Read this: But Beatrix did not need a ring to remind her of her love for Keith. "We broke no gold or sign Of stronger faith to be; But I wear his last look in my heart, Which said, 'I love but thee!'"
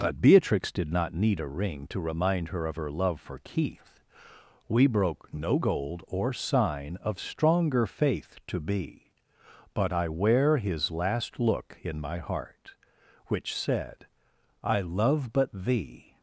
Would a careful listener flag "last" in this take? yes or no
no